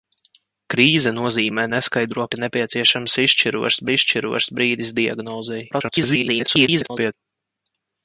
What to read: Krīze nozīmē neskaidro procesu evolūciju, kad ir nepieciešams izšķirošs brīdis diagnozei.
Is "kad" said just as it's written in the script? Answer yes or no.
no